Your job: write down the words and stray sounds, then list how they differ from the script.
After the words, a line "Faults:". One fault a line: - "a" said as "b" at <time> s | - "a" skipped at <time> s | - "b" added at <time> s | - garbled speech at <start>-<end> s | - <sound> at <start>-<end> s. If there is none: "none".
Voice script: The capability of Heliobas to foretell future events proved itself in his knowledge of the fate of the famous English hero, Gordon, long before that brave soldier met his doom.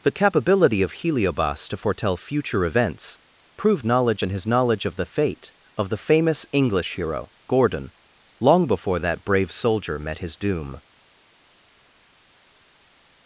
The capability of Heliobas to foretell future events proved knowledge in his knowledge of the fate of the famous English hero, Gordon, long before that brave soldier met his doom.
Faults:
- "itself" said as "knowledge" at 3.8 s